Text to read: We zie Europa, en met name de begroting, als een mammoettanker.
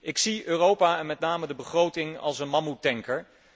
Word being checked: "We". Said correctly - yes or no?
no